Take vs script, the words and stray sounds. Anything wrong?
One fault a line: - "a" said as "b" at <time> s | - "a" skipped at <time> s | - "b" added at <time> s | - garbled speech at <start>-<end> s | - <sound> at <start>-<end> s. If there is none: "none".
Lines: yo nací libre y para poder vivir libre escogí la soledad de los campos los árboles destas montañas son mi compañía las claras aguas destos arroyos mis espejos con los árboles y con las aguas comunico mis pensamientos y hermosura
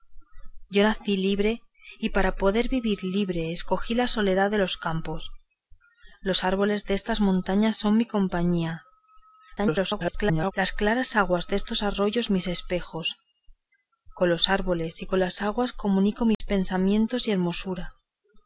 - garbled speech at 9.6-10.5 s
- dropout at 16.3-16.4 s